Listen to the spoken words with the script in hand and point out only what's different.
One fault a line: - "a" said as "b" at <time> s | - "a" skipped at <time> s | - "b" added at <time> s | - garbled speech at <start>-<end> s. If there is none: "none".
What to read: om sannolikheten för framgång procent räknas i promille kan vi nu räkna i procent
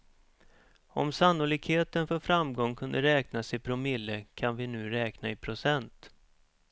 - "procent" said as "kunde" at 2.8 s